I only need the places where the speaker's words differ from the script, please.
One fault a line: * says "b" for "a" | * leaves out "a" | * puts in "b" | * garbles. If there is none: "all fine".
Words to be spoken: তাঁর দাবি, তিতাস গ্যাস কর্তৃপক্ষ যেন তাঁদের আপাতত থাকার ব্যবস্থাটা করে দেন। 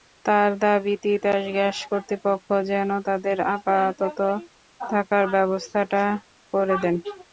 all fine